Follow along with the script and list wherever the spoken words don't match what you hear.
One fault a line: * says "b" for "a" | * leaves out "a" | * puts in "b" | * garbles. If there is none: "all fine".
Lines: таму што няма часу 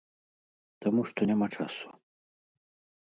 all fine